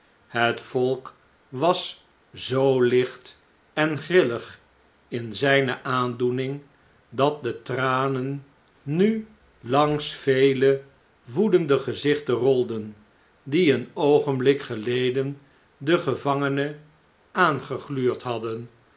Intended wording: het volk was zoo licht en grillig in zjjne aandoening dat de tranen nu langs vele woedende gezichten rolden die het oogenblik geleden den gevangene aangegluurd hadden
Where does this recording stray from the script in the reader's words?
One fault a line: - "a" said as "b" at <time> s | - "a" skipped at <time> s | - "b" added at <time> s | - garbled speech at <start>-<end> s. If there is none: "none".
- "het" said as "een" at 13.7 s